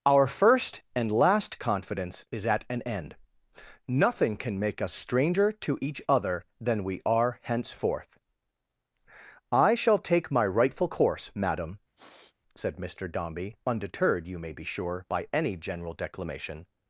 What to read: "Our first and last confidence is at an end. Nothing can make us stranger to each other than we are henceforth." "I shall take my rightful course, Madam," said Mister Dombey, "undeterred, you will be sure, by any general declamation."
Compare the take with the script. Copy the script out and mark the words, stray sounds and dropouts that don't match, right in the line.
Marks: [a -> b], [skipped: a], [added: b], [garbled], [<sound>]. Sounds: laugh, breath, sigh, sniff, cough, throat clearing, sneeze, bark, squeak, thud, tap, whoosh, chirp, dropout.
"Our first and last confidence is at an end. Nothing can make us stranger to each other than we are henceforth." "I shall take my rightful course, Madam," [sniff] said Mister Dombey, "undeterred, you [will -> may] be sure, by any general declamation."